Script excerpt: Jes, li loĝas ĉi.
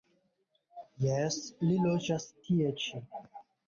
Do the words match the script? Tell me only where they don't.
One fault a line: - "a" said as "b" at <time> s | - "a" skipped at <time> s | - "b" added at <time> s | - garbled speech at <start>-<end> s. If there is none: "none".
- "tie" added at 2.5 s